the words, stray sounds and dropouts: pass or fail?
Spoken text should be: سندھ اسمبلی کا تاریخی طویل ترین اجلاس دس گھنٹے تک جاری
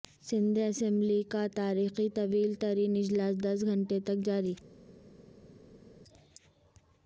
pass